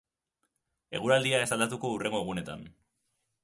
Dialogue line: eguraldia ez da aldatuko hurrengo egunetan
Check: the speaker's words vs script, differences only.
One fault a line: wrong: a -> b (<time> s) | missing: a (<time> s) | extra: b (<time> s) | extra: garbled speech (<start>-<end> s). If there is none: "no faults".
no faults